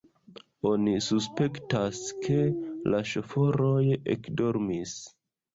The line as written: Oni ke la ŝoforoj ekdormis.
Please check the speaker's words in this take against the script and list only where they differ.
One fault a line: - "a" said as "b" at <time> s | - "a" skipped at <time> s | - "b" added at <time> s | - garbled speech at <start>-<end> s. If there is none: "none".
- "suspektas" added at 1.1 s